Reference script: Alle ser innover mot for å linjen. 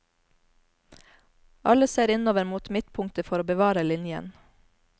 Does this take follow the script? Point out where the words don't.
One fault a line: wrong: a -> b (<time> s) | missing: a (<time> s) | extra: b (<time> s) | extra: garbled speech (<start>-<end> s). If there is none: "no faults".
extra: midtpunktet (2.7 s)
extra: bevare (3.5 s)